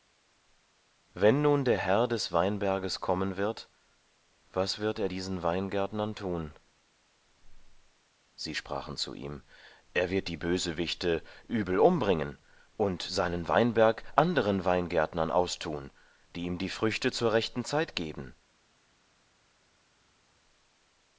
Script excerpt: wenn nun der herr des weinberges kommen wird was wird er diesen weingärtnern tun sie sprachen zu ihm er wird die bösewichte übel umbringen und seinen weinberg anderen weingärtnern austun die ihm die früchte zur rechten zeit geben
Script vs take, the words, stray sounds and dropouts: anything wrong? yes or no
no